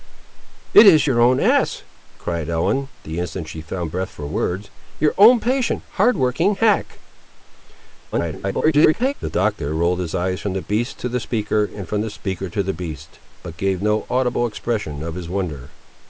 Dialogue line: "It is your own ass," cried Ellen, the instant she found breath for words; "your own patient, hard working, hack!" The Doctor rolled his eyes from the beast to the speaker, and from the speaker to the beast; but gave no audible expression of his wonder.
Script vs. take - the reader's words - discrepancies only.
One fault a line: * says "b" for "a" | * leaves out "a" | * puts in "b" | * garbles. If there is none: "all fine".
* garbles